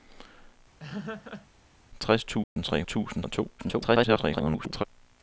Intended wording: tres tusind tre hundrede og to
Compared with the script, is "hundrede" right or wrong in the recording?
wrong